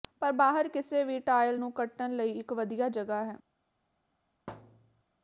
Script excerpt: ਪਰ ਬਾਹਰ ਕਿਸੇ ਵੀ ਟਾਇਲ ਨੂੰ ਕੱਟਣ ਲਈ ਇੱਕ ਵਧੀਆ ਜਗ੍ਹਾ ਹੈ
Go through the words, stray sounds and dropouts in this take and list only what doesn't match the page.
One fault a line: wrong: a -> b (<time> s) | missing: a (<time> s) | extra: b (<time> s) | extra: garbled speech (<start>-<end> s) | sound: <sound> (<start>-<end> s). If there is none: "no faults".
sound: thud (4.5-5.0 s)